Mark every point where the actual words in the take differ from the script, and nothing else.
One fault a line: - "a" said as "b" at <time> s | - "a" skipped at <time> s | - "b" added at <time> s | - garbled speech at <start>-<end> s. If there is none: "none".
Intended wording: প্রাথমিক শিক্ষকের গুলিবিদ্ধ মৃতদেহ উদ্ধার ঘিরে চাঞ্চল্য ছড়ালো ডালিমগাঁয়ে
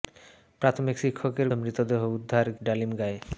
- "গুলিবিদ্ধ" skipped at 1.5 s
- "ঘিরে চাঞ্চল্য ছড়ালো" skipped at 2.5 s